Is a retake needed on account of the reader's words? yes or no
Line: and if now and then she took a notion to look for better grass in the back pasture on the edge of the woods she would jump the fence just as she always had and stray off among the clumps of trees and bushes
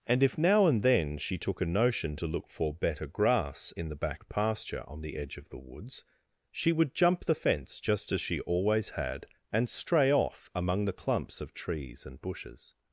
no